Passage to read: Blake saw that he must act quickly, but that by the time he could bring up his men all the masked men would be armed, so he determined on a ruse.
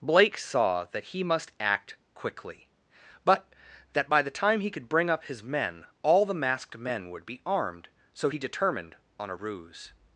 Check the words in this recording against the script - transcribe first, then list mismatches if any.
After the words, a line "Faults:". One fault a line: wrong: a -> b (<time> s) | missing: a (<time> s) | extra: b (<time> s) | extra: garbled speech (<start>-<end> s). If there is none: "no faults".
Blake saw that he must act quickly, but that by the time he could bring up his men all the masked men would be armed, so he determined on a ruse.
Faults:
no faults